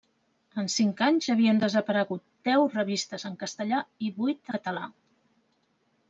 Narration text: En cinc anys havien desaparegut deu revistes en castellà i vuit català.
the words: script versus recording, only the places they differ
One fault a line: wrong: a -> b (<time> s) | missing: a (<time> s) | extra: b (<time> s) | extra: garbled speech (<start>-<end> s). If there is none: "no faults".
no faults